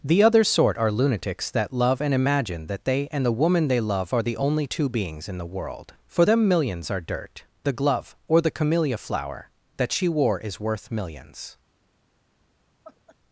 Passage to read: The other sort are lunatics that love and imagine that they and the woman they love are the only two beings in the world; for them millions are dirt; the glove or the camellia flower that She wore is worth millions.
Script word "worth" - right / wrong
right